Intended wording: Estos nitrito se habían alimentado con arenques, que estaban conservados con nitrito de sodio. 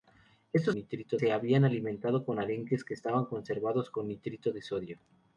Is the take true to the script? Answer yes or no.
yes